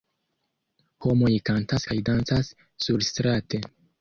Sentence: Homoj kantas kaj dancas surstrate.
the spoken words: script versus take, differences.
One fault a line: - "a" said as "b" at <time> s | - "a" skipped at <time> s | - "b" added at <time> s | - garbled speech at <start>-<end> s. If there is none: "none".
none